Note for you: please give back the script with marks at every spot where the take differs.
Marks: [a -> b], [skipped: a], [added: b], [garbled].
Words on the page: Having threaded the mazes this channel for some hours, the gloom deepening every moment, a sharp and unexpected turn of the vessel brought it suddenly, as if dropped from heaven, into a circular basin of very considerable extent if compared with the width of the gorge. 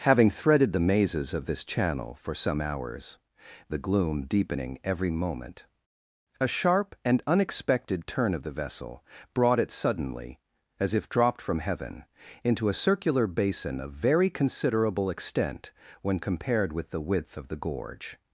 Having threaded the mazes [added: of] this channel for some hours, the gloom deepening every moment, a sharp and unexpected turn of the vessel brought it suddenly, as if dropped from heaven, into a circular basin of very considerable extent [if -> when] compared with the width of the gorge.